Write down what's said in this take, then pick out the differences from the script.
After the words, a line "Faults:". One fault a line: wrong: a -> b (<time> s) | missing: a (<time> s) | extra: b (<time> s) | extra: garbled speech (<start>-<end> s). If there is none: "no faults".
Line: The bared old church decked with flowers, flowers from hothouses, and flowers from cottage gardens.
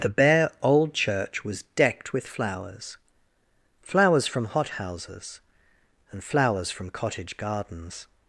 The bare old church was decked with flowers, flowers from hothouses, and flowers from cottage gardens.
Faults:
wrong: bared -> bare (0.1 s)
extra: was (1.4 s)